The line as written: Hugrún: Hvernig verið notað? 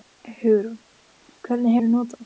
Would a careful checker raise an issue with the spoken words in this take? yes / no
no